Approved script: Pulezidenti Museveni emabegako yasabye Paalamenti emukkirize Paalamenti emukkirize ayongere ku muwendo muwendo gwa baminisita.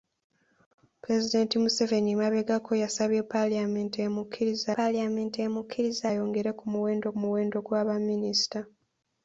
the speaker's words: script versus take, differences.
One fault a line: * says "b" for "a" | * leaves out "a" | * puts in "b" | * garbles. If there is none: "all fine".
all fine